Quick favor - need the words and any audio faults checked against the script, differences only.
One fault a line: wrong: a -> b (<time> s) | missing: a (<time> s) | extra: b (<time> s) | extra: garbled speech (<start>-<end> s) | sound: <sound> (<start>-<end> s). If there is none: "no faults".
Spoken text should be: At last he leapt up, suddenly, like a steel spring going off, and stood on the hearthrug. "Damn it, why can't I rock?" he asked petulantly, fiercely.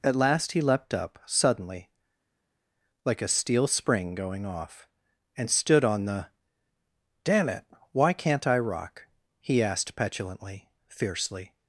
missing: hearthrug (6.3 s)